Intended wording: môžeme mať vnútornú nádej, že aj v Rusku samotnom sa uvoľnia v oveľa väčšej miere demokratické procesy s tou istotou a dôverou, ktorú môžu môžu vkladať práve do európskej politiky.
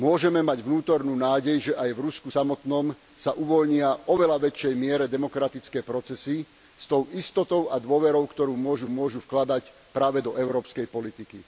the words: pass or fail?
pass